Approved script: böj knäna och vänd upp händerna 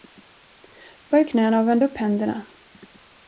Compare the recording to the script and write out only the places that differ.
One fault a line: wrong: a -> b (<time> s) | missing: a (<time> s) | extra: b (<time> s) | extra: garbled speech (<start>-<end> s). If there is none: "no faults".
no faults